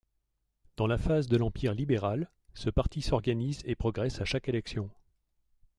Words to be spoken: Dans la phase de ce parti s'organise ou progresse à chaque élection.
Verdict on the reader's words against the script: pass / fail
fail